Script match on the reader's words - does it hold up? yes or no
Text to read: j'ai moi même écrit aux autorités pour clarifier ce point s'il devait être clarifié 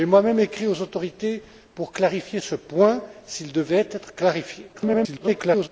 no